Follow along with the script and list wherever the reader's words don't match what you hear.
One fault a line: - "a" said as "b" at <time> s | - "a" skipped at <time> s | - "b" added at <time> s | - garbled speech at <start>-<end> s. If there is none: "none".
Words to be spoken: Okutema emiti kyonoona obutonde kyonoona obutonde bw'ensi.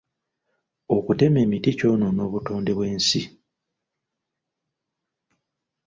- "kyonoona obutonde" skipped at 2.7 s